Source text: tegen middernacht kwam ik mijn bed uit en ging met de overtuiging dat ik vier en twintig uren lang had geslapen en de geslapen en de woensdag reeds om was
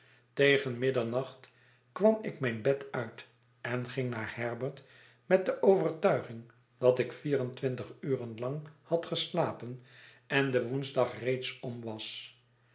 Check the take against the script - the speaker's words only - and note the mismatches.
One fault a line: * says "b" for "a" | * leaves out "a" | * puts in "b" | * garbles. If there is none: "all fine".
* puts in "naar herbert"
* leaves out "geslapen en de"